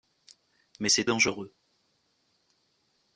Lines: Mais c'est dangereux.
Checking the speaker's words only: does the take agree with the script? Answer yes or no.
yes